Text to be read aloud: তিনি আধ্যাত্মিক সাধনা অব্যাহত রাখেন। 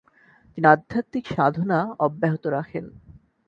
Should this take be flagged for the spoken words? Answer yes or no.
no